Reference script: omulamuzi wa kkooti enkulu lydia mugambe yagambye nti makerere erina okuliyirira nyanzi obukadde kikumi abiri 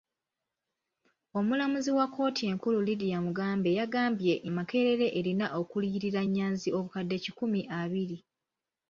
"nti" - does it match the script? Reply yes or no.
no